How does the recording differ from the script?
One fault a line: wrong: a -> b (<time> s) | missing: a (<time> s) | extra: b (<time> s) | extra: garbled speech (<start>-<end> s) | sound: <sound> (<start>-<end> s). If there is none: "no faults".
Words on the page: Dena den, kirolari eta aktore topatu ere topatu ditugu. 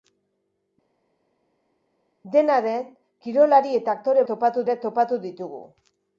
no faults